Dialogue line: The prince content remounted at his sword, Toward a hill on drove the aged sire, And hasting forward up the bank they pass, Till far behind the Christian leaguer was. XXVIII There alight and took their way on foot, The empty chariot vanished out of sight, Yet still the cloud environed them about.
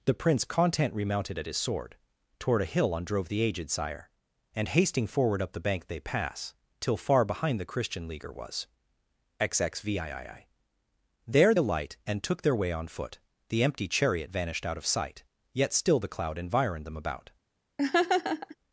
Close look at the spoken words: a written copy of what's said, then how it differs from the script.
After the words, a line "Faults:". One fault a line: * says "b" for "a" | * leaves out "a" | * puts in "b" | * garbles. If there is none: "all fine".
The prince content remounted at his sword, Toward a hill on drove the aged sire, And hasting forward up the bank they pass, Till far behind the Christian leaguer was. XXVIII There alight and took their way on foot, The empty chariot vanished out of sight, Yet still the cloud environed them about.
Faults:
all fine